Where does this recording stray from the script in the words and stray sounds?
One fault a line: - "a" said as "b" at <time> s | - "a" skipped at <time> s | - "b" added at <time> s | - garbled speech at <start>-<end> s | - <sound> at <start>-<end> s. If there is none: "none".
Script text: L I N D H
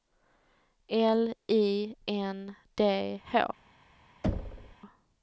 - thud at 4.2-4.8 s